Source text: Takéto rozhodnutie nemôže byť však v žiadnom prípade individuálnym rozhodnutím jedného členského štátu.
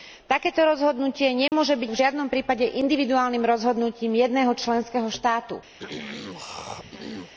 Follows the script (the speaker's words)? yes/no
no